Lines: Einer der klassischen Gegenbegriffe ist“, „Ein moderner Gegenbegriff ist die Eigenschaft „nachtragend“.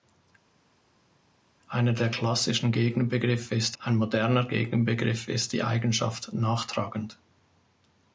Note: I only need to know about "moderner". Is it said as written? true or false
true